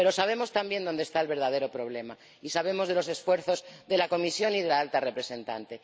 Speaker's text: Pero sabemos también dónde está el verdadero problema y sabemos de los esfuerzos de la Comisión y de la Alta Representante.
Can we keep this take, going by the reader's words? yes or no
yes